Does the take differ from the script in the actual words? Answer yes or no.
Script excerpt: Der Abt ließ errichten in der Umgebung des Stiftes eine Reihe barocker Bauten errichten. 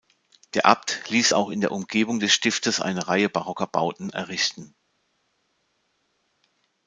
yes